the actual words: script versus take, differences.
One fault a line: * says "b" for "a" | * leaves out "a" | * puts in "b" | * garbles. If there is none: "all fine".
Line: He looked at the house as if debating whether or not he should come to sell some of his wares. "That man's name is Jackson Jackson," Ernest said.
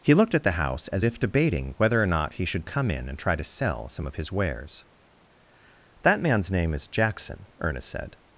* puts in "in and try"
* leaves out "Jackson"